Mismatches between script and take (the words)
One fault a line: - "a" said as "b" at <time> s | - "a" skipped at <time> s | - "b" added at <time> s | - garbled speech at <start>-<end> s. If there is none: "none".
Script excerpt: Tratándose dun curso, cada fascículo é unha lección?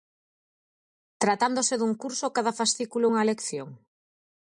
none